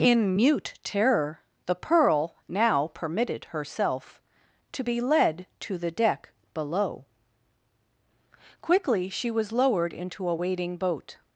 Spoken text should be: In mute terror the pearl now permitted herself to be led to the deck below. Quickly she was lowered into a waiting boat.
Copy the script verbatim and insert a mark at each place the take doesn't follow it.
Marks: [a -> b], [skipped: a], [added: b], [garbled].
In mute terror the pearl now permitted herself to be led to the deck below. Quickly she was lowered into a waiting boat.